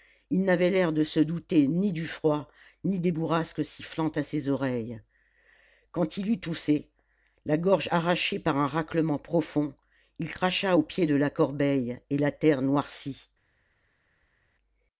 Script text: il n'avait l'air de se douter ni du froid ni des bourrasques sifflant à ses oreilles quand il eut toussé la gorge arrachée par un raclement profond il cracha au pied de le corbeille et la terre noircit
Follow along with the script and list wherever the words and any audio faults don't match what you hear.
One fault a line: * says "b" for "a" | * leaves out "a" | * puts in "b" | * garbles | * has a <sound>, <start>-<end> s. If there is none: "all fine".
* says "la" for "le"